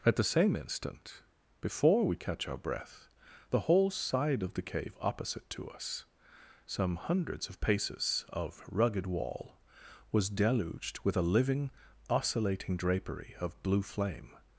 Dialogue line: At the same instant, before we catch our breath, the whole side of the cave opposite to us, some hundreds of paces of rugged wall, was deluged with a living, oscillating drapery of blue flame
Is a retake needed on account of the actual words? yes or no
no